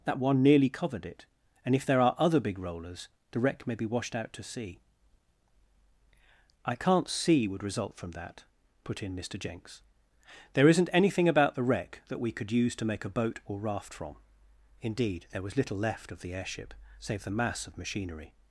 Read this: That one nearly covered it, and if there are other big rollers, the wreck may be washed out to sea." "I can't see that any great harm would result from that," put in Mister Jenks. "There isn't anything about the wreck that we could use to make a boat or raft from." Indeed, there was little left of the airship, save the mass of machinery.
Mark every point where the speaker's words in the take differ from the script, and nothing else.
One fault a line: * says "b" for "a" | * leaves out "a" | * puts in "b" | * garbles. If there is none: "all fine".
* leaves out "that any great harm"